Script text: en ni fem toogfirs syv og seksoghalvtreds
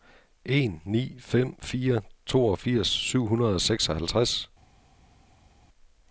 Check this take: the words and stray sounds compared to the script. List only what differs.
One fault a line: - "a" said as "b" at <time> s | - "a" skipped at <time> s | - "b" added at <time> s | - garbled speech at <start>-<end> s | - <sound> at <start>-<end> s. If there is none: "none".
- "fire" added at 1.6 s
- "hundrede" added at 3.3 s